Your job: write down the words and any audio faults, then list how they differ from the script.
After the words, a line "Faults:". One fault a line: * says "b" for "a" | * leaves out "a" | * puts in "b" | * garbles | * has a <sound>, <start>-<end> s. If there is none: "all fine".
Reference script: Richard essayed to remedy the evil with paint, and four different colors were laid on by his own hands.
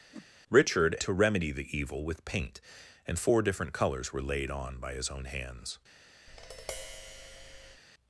Richard to remedy the evil with paint, and four different colors were laid on by his own hands.
Faults:
* has a whoosh, 0.1-0.3 s
* leaves out "essayed"
* has a tap, 6.3-7.8 s